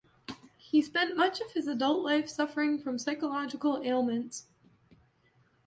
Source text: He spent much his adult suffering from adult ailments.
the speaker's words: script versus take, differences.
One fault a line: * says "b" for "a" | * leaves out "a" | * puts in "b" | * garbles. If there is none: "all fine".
* puts in "of"
* puts in "life"
* says "psychological" for "adult"